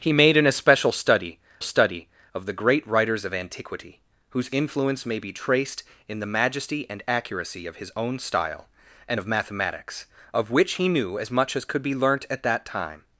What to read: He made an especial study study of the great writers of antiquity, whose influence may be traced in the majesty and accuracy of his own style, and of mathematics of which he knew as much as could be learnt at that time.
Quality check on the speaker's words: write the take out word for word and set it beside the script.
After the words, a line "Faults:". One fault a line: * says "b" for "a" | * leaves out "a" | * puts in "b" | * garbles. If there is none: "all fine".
He made an especial study study of the great writers of antiquity, whose influence may be traced in the majesty and accuracy of his own style, and of mathematics of which he knew as much as could be learnt at that time.
Faults:
all fine